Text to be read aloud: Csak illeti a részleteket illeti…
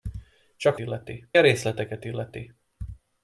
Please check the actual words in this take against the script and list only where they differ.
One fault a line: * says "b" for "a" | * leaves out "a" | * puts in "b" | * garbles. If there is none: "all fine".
all fine